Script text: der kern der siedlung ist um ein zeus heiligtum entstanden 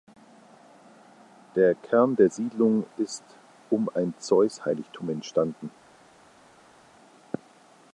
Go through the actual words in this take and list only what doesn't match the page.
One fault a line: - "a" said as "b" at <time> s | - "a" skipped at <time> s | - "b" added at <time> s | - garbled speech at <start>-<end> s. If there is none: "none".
none